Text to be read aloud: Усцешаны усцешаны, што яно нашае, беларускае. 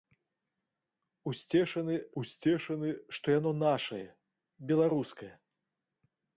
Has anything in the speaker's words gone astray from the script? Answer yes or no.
no